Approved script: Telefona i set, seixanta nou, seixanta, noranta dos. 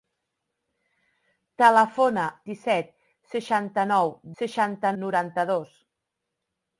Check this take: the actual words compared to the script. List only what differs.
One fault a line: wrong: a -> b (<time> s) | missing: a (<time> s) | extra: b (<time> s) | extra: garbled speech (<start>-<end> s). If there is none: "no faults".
no faults